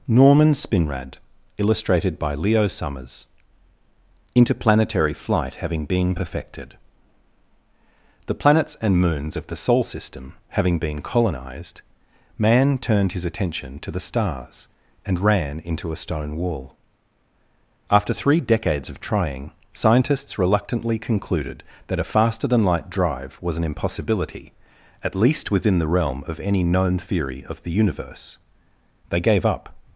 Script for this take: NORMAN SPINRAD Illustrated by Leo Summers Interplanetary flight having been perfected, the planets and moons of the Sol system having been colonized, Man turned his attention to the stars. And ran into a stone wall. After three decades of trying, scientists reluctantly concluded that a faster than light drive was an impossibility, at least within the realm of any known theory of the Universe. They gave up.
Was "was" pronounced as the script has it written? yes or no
yes